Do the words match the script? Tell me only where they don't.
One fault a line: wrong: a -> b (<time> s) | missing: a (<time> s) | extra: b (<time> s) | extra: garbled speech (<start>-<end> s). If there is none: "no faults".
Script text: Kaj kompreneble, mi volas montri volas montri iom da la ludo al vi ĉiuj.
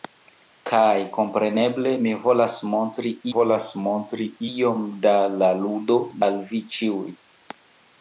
no faults